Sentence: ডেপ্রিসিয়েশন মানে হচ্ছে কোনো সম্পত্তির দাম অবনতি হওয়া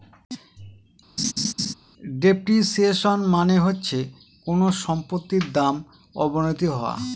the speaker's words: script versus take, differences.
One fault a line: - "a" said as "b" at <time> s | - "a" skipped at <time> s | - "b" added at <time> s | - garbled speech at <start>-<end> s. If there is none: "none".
none